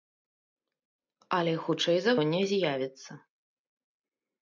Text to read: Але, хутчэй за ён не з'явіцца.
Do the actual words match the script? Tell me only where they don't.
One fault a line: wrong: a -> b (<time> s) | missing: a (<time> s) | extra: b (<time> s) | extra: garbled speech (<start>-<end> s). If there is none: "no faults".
no faults